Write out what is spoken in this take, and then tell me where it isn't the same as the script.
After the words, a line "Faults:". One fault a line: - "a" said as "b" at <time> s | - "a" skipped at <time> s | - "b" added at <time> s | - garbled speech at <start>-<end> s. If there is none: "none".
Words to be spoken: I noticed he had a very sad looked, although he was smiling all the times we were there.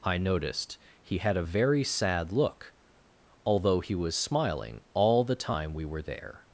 I noticed he had a very sad look, although he was smiling all the time we were there.
Faults:
- "looked" said as "look" at 2.3 s
- "times" said as "time" at 5.4 s